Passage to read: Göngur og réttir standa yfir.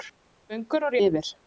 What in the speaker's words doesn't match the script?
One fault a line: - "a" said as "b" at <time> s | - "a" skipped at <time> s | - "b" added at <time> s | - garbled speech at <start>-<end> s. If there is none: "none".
- "réttir standa" skipped at 1.0 s